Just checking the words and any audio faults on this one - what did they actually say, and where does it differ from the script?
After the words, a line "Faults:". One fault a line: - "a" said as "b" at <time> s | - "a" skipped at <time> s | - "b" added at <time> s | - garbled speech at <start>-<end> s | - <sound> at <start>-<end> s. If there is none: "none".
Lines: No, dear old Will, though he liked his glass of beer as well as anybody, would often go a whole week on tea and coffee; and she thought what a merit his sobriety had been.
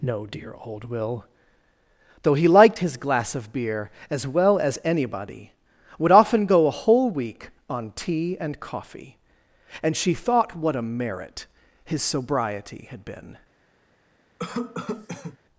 No, dear old Will, though he liked his glass of beer as well as anybody, would often go a whole week on tea and coffee; and she thought what a merit his sobriety had been.
Faults:
- cough at 14.4-15.4 s